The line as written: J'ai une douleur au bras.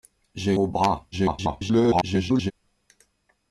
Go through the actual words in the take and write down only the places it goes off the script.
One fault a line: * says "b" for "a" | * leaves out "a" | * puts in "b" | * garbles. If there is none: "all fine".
* leaves out "une douleur"
* garbles